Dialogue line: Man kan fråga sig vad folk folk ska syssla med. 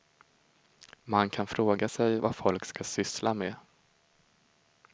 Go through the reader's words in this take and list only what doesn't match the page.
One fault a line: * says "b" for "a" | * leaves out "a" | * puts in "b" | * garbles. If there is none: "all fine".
* leaves out "folk"